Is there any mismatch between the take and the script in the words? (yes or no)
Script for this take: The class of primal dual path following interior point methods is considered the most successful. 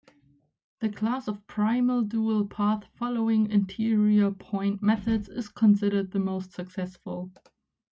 no